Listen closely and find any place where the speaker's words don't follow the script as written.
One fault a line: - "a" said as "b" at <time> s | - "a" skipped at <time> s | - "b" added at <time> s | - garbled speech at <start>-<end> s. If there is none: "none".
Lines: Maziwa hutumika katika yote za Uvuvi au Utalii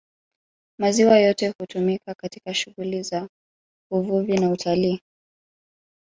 - "yote" added at 1.2 s
- "yote" said as "shughuli" at 2.5 s
- "au" said as "na" at 4.4 s